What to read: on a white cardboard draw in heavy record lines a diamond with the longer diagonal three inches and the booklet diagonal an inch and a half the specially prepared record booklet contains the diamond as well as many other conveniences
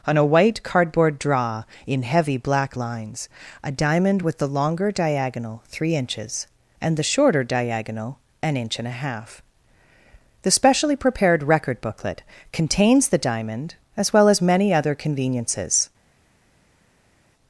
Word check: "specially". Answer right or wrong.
right